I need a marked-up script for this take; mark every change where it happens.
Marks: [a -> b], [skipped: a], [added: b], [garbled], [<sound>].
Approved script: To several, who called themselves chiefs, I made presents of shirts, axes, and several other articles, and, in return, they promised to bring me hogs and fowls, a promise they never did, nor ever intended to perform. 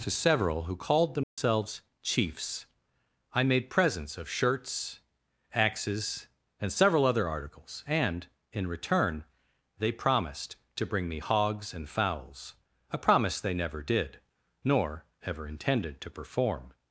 To several, who called themselves [dropout] chiefs, I made presents of shirts, axes, and several other articles, and, in return, they promised to bring me hogs and fowls, a promise they never did, nor ever intended to perform.